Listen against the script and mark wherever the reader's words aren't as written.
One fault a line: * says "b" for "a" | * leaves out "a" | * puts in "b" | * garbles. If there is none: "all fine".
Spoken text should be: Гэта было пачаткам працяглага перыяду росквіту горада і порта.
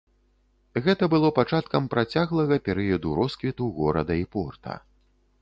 all fine